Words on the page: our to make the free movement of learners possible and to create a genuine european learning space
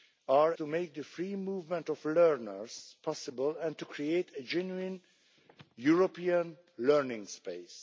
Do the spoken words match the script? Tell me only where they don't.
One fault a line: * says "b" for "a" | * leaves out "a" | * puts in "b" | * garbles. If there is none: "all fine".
all fine